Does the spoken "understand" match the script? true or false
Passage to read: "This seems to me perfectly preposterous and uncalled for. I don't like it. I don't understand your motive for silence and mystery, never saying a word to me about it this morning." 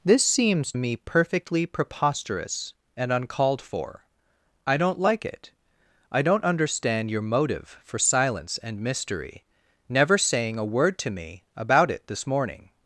true